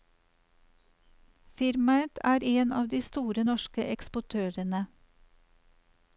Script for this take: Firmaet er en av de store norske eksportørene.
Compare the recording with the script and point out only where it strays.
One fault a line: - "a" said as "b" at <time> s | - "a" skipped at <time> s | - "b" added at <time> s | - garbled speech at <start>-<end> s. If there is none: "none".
none